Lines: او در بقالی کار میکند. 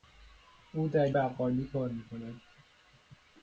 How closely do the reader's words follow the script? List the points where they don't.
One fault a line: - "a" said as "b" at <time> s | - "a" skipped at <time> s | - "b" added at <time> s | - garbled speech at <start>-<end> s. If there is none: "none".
none